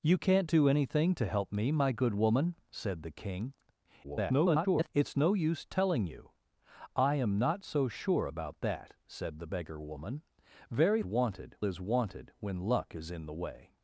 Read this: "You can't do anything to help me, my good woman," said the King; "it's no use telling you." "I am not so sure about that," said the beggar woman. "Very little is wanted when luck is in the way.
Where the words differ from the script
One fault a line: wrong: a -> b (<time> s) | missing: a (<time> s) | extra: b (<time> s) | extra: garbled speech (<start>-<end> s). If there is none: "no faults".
extra: garbled speech (4.0-4.9 s)
wrong: little -> wanted (11.0 s)